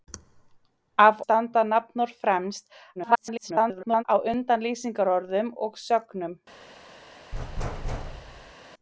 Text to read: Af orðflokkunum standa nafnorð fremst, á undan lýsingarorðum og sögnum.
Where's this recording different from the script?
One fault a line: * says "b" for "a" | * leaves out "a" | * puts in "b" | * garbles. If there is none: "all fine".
* leaves out "orðflokkunum"
* garbles